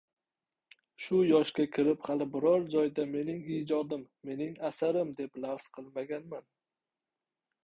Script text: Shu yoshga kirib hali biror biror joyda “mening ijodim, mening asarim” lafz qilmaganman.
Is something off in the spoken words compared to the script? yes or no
yes